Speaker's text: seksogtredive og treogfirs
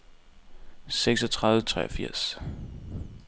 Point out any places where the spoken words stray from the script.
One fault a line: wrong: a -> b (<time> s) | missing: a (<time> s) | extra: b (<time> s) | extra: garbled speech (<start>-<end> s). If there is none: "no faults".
no faults